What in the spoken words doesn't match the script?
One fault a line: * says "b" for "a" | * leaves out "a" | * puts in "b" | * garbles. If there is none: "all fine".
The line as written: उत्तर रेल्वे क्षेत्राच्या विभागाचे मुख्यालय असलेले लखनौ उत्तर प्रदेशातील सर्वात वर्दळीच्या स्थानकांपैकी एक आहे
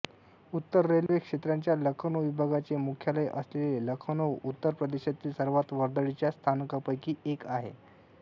* puts in "लखनौ"